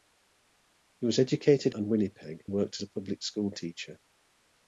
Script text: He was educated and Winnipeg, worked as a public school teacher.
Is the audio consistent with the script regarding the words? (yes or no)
yes